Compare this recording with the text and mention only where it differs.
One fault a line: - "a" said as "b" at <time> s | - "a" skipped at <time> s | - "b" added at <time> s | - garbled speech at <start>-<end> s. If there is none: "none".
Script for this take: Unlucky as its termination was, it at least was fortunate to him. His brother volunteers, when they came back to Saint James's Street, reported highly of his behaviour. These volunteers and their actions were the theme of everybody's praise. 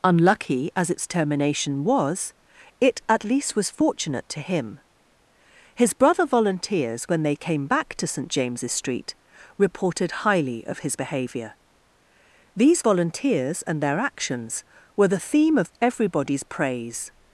none